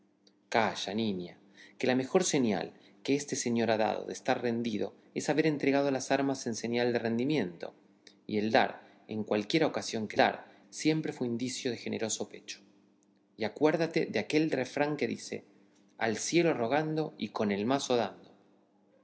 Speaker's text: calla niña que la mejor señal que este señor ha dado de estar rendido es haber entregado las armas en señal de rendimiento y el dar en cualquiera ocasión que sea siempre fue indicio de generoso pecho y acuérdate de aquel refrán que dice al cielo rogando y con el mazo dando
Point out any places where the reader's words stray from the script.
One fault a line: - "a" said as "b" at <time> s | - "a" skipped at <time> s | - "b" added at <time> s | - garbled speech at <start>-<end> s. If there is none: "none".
- "sea" said as "dar" at 10.2 s